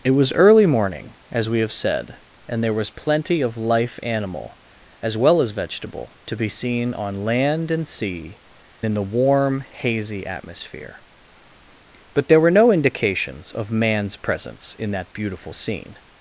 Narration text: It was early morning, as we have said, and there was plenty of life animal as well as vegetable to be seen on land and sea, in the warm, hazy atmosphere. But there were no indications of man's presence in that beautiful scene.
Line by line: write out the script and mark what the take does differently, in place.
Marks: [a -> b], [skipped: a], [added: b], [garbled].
It was early morning, as we have said, and there was plenty of life animal as well as vegetable to be seen on land and sea, in the warm, hazy atmosphere. But there were no indications of man's presence in that beautiful scene.